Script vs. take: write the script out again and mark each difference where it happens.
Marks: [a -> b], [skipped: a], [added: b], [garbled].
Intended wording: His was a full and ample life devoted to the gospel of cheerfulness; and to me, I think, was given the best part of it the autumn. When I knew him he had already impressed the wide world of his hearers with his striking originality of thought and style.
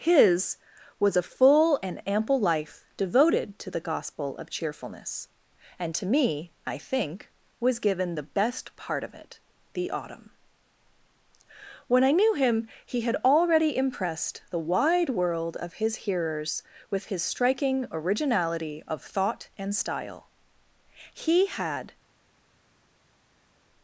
His was a full and ample life devoted to the gospel of cheerfulness; and to me, I think, was given the best part of it the autumn. When I knew him he had already impressed the wide world of his hearers with his striking originality of thought and style. [added: He had]